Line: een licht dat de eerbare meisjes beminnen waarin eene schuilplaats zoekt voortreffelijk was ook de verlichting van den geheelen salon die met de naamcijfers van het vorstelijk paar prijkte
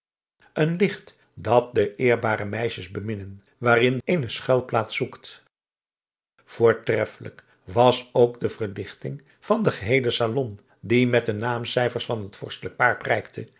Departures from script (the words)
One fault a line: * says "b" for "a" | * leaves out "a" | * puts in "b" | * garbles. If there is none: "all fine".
all fine